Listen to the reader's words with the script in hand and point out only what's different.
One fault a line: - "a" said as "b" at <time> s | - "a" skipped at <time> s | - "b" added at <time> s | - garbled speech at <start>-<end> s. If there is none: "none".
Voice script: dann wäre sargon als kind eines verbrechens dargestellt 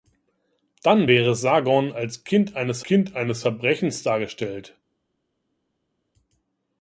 - "kind eines" added at 2.8 s